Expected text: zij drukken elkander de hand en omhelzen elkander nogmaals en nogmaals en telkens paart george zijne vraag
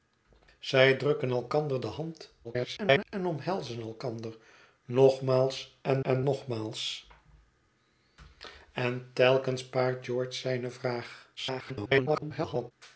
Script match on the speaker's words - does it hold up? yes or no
no